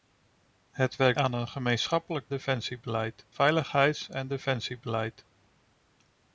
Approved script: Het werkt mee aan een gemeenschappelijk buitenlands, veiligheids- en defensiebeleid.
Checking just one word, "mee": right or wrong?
wrong